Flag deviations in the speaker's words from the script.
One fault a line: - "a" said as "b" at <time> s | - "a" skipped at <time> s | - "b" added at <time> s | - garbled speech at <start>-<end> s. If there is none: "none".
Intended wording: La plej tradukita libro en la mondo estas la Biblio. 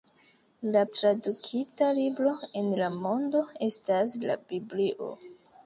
- "plej" skipped at 0.8 s